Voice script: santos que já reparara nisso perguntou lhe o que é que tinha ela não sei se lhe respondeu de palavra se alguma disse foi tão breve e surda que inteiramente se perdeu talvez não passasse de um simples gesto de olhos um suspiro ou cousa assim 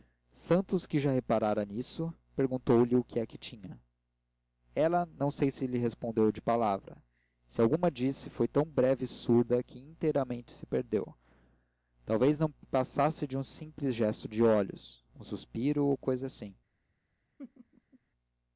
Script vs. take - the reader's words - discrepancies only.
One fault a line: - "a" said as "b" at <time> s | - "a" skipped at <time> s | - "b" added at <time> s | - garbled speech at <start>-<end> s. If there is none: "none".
none